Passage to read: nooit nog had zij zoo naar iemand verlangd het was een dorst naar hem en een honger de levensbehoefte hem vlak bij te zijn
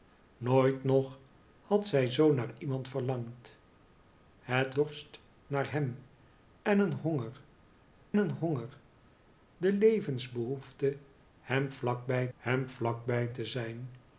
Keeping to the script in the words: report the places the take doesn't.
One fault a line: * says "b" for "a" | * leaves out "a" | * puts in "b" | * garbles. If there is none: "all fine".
* leaves out "was een"
* puts in "een honger"
* puts in "hem vlak bij"